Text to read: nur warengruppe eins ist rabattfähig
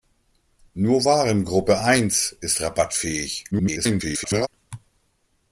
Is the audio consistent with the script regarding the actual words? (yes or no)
no